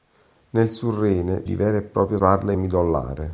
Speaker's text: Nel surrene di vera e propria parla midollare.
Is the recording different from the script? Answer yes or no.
no